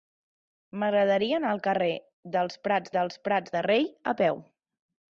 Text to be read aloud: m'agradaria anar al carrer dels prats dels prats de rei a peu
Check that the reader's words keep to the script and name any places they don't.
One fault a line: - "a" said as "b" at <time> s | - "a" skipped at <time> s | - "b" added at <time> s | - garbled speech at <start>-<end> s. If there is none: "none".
none